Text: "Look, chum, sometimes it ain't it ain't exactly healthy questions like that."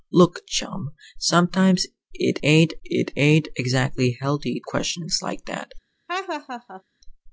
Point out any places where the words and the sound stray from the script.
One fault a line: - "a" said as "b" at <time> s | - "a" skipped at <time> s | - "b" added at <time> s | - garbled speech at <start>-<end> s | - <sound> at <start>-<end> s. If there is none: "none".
- laugh at 6.1-6.8 s